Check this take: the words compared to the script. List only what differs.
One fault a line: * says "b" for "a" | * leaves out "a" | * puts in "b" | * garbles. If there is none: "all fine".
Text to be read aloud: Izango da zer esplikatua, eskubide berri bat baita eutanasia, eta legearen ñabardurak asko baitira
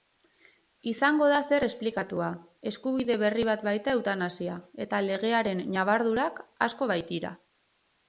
all fine